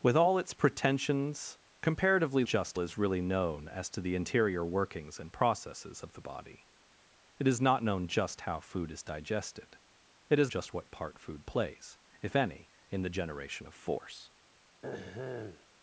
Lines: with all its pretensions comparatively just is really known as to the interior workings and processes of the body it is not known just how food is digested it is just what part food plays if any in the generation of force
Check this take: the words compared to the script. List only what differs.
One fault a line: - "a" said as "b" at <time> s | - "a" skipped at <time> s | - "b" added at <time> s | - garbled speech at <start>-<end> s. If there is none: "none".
none